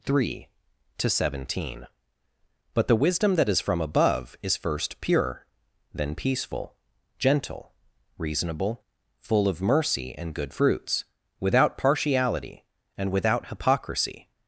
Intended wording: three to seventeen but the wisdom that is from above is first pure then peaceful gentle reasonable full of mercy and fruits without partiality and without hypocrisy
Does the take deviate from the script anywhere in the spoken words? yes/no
yes